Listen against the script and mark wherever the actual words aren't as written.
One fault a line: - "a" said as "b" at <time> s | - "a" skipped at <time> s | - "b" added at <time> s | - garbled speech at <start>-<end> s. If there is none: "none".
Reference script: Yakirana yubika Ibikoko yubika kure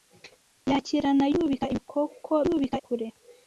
none